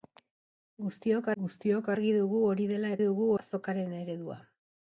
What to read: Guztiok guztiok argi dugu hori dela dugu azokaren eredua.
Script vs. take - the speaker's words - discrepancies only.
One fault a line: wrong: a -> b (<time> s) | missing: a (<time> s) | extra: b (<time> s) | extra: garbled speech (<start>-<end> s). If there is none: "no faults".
no faults